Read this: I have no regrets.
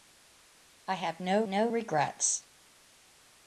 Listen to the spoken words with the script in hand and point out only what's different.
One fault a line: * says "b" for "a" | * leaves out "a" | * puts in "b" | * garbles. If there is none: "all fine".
* puts in "no"